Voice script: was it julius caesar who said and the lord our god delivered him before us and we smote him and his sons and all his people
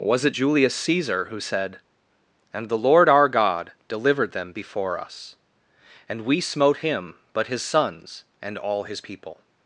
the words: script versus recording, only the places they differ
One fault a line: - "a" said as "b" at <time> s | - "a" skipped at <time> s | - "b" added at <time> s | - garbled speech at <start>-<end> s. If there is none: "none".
- "him" said as "them" at 4.3 s
- "and" said as "but" at 7.3 s